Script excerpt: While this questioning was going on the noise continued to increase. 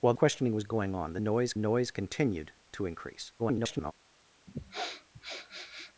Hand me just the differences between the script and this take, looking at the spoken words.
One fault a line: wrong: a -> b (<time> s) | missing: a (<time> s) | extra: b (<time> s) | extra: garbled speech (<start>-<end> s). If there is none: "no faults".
missing: this (0.1 s)
extra: noise (1.5 s)
extra: garbled speech (3.4-3.9 s)